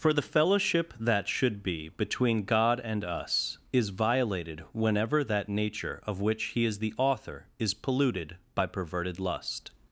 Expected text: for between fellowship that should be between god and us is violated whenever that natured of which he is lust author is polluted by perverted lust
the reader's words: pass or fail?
fail